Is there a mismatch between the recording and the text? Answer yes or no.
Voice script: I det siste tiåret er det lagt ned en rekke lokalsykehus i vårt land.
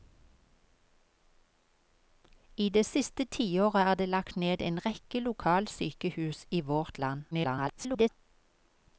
yes